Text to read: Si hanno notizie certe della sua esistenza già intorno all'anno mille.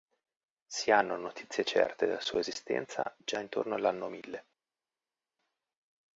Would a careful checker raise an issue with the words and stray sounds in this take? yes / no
no